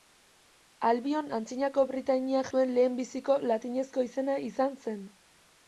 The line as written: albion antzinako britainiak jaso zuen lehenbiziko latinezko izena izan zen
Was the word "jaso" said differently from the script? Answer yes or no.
yes